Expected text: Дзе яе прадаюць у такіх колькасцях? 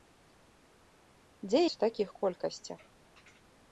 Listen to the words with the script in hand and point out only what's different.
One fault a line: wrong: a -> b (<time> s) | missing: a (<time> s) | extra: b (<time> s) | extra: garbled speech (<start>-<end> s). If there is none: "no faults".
missing: яе прадаюць (1.6 s)